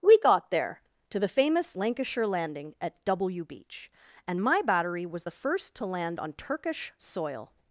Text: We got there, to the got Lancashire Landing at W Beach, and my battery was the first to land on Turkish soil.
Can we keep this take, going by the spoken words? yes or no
no